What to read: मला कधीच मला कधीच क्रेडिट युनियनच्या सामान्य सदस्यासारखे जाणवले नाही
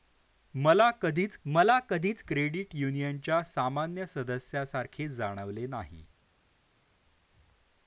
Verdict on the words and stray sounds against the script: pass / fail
pass